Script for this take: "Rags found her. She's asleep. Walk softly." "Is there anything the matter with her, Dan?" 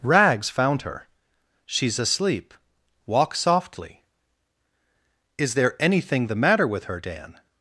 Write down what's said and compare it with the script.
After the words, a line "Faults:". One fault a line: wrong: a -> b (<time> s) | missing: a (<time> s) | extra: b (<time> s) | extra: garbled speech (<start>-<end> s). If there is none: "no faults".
"Rags found her. She's asleep. Walk softly." "Is there anything the matter with her, Dan?"
Faults:
no faults